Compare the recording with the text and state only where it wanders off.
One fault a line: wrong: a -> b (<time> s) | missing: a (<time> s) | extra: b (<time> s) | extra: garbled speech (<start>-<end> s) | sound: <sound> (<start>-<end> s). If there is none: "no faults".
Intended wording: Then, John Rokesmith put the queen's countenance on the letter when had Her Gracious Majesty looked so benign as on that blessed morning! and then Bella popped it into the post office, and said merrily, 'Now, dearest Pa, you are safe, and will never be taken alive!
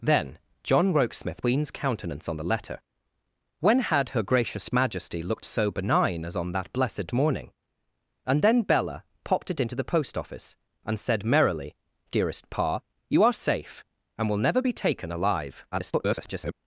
missing: put the (1.4 s)
missing: Now (11.8 s)
extra: garbled speech (15.7-16.5 s)